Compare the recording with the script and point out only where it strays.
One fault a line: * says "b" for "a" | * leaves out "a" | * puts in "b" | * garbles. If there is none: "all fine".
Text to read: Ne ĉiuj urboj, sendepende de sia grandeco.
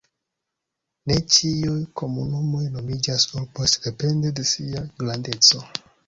* puts in "komunumoj nomiĝas"